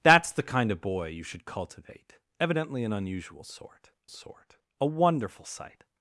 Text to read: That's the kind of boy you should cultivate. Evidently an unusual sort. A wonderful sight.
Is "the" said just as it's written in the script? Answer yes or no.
yes